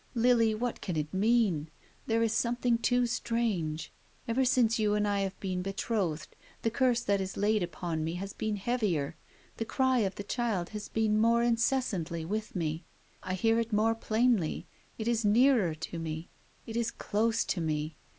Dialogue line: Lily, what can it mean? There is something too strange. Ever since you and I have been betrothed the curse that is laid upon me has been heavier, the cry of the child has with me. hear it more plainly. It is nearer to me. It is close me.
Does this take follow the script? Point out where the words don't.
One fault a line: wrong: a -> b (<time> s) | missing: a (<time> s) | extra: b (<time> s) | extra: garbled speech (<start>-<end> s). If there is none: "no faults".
extra: been more incessantly (10.9 s)
extra: I (13.2 s)
extra: to (17.5 s)